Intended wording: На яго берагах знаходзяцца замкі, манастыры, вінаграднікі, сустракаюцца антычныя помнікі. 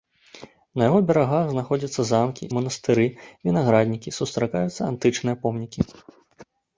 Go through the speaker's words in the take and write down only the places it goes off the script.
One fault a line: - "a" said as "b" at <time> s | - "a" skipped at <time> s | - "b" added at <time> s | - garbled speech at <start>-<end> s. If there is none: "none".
none